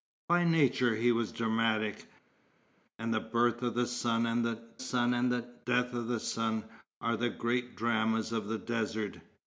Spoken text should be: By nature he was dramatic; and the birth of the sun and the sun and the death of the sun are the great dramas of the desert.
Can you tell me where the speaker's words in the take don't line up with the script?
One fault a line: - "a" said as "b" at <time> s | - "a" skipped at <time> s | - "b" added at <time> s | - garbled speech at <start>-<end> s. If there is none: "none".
none